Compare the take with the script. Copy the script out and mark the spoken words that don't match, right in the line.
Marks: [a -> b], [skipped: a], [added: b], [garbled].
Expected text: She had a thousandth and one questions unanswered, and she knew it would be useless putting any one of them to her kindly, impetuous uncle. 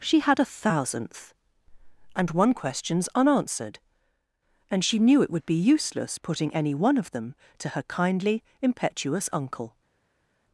She had a thousandth and one questions unanswered, and she knew it would be useless putting any one of them to her kindly, impetuous uncle.